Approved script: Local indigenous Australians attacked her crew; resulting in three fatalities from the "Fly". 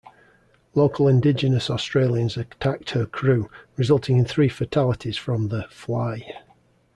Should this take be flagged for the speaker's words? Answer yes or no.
no